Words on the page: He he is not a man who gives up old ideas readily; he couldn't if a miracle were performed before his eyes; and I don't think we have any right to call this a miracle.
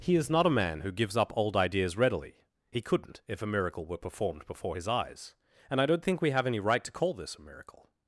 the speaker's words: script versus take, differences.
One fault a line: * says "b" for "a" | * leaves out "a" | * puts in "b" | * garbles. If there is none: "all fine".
* leaves out "he"